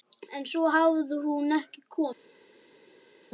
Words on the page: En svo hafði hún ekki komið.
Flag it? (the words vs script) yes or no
no